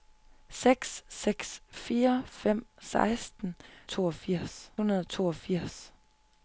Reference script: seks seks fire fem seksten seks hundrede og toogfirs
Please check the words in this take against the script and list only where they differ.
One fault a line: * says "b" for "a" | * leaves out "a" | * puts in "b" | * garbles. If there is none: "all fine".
* says "toogfirs" for "seks"